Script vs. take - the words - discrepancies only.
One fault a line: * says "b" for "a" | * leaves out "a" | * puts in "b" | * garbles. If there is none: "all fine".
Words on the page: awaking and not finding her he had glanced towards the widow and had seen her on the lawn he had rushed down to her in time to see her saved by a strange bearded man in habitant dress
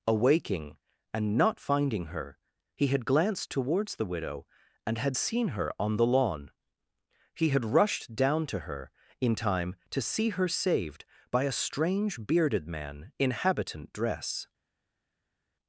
all fine